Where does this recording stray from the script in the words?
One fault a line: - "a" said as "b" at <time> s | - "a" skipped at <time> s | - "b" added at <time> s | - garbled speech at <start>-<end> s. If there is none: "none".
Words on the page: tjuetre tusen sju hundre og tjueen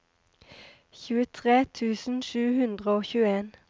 none